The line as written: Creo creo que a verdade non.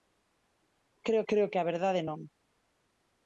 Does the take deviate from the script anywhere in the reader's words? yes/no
no